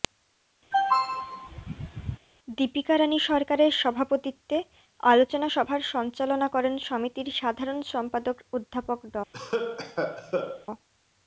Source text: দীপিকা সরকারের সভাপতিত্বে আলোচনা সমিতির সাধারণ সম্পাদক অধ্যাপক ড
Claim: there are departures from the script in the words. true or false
true